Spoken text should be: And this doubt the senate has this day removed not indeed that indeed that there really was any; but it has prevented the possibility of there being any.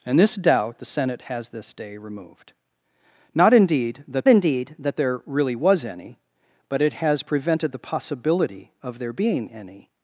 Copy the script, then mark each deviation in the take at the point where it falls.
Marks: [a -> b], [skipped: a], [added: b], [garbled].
And this doubt the senate has this day removed not indeed that indeed that there really was any; but it has prevented the possibility of there being any.